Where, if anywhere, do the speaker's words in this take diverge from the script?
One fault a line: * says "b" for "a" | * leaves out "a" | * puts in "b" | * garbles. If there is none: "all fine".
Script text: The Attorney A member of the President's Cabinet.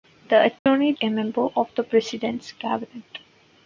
all fine